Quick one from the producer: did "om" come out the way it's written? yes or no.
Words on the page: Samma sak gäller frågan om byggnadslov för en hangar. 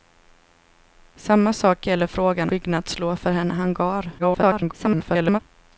no